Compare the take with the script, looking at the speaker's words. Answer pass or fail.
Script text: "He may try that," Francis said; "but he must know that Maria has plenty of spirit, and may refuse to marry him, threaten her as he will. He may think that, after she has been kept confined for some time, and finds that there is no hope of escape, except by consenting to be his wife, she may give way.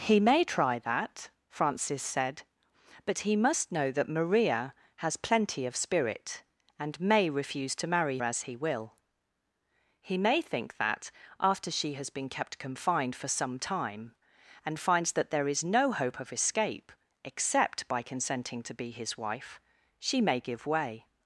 fail